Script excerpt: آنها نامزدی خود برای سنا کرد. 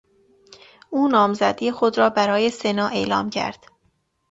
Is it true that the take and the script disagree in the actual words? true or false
true